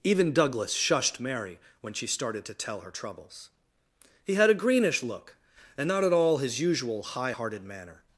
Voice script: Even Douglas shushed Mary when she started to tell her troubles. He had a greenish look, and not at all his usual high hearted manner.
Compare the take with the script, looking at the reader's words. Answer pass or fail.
pass